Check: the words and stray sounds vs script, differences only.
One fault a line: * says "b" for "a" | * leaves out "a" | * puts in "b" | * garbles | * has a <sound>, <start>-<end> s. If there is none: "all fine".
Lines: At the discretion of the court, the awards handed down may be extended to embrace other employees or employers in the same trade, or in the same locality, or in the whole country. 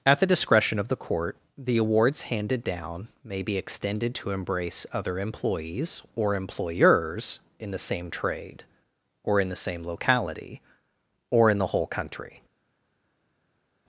all fine